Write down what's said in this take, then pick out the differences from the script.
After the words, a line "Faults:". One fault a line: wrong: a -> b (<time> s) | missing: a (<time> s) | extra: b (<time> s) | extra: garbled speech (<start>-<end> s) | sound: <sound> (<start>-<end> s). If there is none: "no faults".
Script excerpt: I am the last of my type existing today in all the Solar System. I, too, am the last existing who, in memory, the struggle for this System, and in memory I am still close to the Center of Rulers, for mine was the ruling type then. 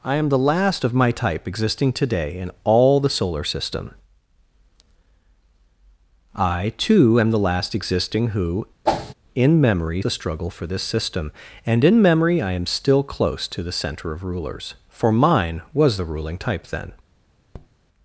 I am the last of my type existing today in all the Solar System. I, too, am the last existing who, in memory, the struggle for this System, and in memory I am still close to the Center of Rulers, for mine was the ruling type then.
Faults:
sound: whoosh (8.9-9.1 s)
sound: tap (17.5-17.7 s)